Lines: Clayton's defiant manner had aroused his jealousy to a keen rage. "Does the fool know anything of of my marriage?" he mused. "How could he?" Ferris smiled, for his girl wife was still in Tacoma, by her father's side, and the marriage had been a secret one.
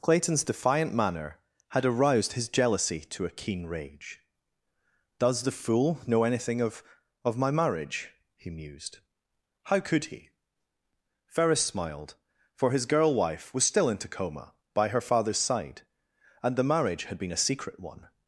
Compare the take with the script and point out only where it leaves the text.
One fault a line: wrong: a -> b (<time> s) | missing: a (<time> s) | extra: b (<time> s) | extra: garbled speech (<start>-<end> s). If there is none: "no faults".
no faults